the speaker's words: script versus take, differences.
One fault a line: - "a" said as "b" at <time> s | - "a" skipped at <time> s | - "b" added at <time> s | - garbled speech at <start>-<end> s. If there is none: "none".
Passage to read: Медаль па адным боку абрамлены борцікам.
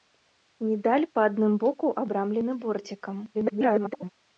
- garbled speech at 3.3-4.1 s